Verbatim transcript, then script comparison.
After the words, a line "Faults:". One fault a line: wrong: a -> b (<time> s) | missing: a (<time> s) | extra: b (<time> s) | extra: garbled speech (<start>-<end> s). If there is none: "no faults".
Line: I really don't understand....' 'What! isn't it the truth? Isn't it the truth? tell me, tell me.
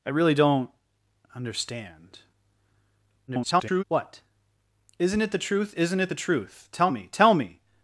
I really don't understand....' [garbled] 'What! isn't it the truth? Isn't it the truth? tell me, tell me.
Faults:
extra: garbled speech (3.3-3.8 s)